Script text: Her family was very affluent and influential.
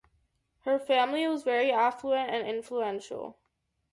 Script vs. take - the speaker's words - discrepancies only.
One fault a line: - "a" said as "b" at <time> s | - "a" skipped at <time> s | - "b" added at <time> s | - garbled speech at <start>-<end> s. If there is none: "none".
none